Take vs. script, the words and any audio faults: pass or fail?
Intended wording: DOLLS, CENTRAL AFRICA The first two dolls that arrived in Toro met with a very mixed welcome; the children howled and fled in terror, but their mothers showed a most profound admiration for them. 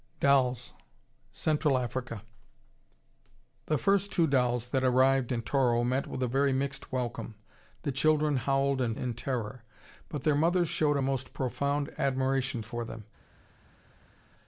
fail